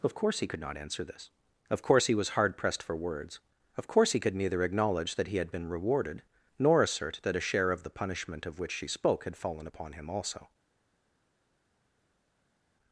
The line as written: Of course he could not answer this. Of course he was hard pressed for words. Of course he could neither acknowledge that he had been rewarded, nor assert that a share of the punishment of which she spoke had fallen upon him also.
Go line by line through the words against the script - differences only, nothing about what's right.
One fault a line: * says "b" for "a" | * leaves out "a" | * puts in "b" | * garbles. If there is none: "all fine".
all fine